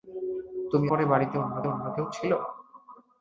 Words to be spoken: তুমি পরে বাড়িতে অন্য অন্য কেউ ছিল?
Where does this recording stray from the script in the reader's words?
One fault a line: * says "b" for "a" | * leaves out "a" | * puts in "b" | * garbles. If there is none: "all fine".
all fine